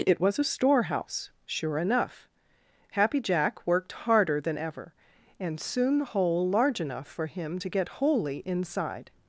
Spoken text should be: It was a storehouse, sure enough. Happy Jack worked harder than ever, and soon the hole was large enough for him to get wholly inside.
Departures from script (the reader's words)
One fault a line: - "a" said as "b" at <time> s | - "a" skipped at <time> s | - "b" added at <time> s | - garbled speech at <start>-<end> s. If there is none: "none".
- "was" skipped at 6.5 s